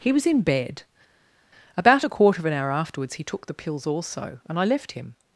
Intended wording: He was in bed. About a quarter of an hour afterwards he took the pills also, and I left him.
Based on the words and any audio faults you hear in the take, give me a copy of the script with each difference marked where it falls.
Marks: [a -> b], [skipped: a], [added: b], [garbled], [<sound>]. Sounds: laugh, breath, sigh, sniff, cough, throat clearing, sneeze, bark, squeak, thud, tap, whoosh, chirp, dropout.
He was in bed. About a quarter of an hour afterwards he took the pills also, and I left him.